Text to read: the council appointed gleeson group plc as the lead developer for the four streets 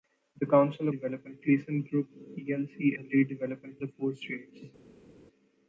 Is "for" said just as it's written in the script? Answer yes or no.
no